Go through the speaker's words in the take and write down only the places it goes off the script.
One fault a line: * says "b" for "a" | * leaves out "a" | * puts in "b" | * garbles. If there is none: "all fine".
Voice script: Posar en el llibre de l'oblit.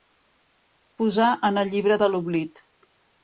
all fine